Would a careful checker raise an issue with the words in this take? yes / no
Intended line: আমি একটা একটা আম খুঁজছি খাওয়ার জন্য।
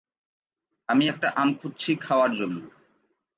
yes